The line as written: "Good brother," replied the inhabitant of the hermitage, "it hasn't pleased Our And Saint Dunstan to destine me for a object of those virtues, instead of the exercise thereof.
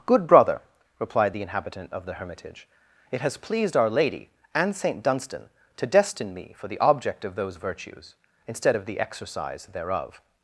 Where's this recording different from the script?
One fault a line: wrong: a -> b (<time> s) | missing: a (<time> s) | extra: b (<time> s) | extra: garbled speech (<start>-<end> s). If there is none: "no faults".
wrong: hasn't -> has (3.2 s)
extra: Lady (3.9 s)
wrong: a -> the (6.7 s)